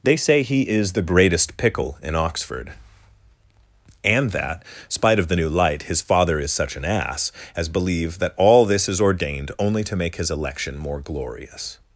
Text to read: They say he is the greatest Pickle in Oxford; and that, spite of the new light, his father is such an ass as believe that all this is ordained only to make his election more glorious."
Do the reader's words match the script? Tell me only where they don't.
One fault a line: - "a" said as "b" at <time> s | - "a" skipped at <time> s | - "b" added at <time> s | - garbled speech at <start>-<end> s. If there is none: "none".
none